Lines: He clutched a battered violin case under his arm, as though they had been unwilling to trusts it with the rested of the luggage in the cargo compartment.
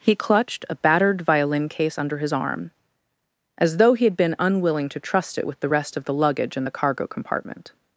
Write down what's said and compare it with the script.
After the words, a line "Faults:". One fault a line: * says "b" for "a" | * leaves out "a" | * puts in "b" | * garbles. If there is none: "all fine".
He clutched a battered violin case under his arm, as though he had been unwilling to trust it with the rest of the luggage in the cargo compartment.
Faults:
* says "he" for "they"
* says "trust" for "trusts"
* says "rest" for "rested"